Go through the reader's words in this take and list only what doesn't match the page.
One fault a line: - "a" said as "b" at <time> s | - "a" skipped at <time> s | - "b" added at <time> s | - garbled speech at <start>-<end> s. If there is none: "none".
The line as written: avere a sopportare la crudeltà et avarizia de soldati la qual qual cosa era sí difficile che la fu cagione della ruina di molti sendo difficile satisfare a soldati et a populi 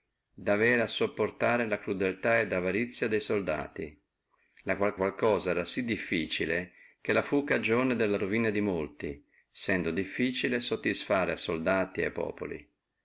none